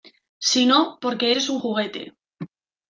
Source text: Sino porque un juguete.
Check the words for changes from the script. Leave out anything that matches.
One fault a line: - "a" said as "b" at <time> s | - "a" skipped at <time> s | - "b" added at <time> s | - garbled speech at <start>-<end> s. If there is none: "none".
- "eres" added at 1.3 s